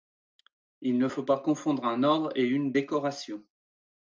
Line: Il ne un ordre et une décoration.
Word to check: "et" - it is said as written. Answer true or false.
true